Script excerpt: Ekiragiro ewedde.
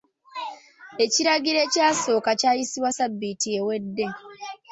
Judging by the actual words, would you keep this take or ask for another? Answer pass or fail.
fail